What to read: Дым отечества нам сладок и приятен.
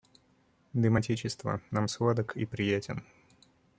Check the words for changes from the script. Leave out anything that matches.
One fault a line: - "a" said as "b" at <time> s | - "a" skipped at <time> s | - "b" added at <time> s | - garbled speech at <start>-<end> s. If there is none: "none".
none